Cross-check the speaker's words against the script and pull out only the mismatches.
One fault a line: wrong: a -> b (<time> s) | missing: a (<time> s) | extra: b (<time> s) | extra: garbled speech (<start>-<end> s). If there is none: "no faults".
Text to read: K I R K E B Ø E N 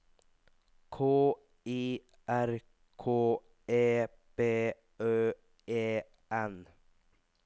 no faults